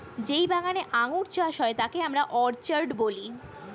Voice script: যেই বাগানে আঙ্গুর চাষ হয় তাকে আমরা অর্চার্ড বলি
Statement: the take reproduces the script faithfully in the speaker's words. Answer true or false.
true